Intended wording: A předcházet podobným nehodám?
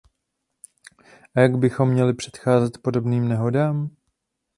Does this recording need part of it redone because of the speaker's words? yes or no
yes